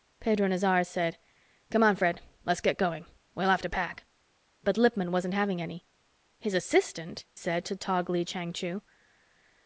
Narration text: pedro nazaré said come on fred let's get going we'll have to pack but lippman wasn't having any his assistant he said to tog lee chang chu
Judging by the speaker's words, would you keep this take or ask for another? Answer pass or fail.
fail